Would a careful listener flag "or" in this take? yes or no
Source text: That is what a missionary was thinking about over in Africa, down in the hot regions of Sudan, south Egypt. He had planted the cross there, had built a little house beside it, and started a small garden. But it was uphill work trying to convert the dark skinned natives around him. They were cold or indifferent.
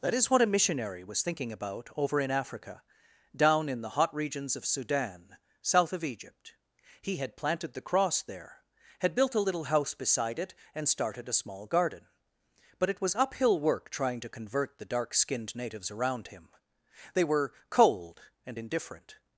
yes